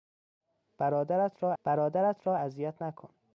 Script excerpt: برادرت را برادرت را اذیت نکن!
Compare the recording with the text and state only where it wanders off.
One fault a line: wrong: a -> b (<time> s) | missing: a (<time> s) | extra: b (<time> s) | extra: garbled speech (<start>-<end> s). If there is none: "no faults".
no faults